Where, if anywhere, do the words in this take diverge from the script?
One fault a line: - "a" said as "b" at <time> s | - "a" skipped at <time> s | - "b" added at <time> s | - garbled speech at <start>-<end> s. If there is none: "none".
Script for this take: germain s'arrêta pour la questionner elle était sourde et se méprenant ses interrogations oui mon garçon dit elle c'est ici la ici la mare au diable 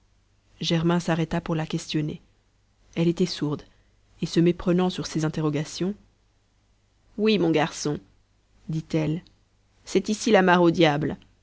- "sur" added at 4.9 s
- "ici la" skipped at 10.4 s